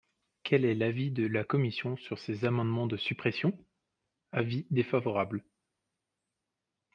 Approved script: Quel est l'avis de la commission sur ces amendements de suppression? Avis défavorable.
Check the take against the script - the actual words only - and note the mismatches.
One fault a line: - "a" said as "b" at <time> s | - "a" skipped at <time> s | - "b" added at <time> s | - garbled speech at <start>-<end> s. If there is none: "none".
none